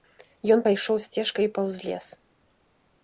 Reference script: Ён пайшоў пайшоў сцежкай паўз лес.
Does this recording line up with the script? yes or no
no